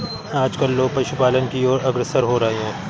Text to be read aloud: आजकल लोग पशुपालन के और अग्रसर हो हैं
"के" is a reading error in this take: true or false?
true